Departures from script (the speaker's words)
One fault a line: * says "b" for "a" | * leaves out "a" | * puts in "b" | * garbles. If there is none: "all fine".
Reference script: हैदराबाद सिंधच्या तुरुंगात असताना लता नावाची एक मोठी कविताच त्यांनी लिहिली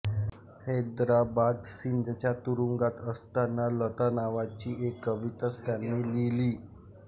* leaves out "मोठी"